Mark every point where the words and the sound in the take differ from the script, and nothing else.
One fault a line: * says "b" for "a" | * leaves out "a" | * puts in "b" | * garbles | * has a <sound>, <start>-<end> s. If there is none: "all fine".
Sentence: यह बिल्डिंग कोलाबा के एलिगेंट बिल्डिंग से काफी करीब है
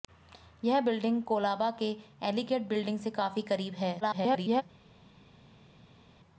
* garbles